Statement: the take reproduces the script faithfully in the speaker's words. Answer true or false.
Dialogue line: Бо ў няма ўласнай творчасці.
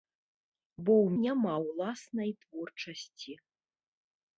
true